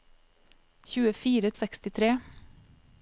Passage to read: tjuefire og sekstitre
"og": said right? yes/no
yes